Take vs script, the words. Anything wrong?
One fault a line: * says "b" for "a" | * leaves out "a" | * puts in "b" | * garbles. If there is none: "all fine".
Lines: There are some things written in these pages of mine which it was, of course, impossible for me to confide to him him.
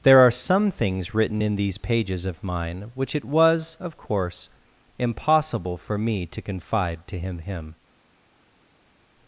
all fine